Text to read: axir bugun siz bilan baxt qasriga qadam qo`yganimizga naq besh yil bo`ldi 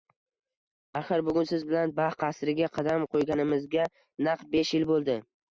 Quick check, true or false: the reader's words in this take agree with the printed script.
true